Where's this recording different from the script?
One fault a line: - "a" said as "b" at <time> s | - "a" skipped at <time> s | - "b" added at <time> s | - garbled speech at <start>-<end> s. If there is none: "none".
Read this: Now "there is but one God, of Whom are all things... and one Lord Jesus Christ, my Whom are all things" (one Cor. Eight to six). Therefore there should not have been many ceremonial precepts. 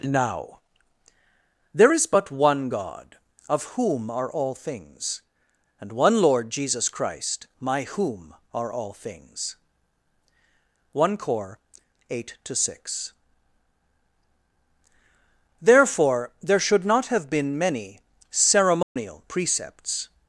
none